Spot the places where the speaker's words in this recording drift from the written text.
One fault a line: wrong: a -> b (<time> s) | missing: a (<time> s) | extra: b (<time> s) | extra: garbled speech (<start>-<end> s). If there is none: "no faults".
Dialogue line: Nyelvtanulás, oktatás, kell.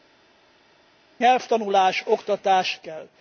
no faults